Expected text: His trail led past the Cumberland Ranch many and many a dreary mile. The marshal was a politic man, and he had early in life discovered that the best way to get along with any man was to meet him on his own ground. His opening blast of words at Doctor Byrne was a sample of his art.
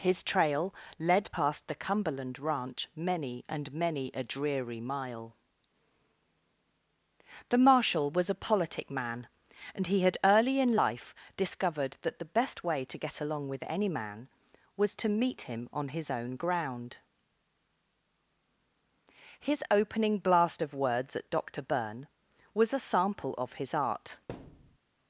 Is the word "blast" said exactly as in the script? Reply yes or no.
yes